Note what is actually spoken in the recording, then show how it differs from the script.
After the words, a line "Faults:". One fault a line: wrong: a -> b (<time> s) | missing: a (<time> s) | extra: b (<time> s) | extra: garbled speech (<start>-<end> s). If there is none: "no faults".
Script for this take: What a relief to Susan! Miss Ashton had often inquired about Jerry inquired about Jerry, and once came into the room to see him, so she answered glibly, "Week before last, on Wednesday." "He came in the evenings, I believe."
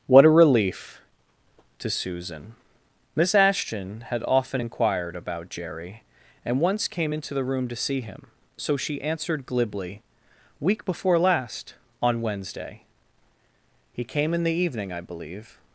What a relief to Susan! Miss Ashton had often inquired about Jerry, and once came into the room to see him, so she answered glibly, "Week before last, on Wednesday." "He came in the evening, I believe."
Faults:
missing: inquired about Jerry (6.0 s)
wrong: evenings -> evening (14.5 s)